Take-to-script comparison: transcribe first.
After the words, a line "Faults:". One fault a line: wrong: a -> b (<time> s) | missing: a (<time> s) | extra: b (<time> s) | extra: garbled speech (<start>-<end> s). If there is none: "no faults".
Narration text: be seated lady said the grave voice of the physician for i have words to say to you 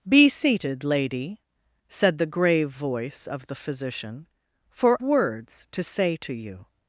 be seated lady said the grave voice of the physician for words to say to you
Faults:
missing: i have (5.0 s)